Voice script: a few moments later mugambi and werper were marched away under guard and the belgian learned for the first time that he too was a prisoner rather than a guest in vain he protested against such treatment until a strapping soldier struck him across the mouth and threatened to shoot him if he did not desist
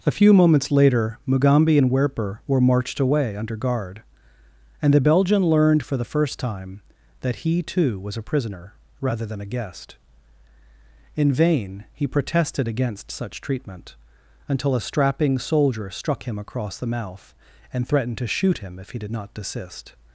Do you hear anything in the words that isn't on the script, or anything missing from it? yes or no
no